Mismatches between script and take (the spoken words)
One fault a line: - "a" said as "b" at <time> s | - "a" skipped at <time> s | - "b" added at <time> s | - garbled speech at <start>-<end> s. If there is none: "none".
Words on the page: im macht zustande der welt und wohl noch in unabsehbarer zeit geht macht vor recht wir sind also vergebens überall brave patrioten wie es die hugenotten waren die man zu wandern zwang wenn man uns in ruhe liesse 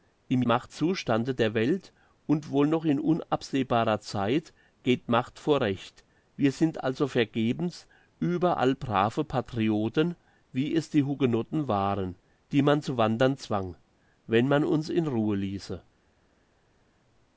none